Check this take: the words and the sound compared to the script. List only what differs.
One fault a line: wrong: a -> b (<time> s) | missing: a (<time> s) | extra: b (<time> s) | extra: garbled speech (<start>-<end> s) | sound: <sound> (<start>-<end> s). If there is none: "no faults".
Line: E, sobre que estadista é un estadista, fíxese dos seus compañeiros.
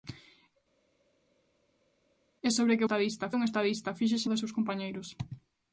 no faults